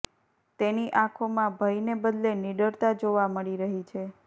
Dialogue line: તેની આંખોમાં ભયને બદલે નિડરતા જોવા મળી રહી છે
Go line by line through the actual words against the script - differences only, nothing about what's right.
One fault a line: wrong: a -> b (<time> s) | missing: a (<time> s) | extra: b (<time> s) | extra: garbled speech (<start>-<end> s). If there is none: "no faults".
no faults